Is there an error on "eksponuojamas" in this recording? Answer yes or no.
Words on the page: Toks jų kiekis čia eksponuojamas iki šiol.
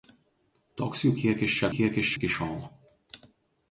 yes